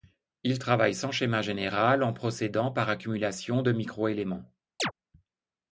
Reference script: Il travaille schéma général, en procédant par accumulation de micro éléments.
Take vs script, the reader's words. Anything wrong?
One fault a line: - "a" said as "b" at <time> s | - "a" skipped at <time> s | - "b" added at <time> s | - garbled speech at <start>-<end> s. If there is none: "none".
- "sans" added at 0.9 s